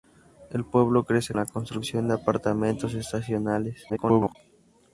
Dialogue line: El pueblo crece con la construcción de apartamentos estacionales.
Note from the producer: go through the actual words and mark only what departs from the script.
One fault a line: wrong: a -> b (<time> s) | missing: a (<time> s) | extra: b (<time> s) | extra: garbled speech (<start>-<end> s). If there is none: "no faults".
missing: con (1.4 s)
extra: garbled speech (3.9-4.4 s)